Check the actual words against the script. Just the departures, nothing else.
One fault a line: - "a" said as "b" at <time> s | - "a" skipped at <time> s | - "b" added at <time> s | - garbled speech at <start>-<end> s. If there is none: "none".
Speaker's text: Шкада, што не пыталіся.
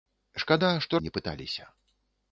none